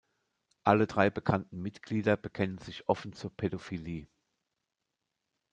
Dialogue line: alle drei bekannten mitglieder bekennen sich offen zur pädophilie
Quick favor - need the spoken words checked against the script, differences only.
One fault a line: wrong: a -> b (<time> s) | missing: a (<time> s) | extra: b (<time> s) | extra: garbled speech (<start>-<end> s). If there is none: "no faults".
no faults